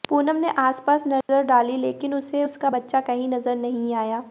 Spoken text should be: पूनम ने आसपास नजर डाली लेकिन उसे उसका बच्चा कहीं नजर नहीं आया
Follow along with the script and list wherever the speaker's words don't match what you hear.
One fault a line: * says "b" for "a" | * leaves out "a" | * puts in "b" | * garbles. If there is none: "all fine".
all fine